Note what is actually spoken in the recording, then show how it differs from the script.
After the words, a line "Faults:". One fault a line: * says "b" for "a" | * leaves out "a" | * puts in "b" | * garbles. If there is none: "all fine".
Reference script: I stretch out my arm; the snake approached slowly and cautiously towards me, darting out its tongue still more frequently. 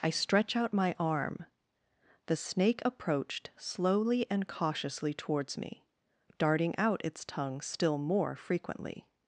I stretch out my arm; the snake approached slowly and cautiously towards me, darting out its tongue still more frequently.
Faults:
all fine